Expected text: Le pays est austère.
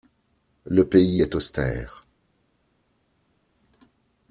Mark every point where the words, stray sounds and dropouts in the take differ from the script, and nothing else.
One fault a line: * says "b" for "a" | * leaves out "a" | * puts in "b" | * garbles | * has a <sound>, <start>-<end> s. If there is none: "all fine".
all fine